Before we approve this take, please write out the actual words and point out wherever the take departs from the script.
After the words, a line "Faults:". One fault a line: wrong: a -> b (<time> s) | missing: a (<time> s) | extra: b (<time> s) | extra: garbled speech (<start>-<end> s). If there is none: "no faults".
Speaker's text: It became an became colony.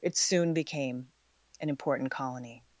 It soon became an important colony.
Faults:
extra: soon (0.2 s)
wrong: became -> important (1.7 s)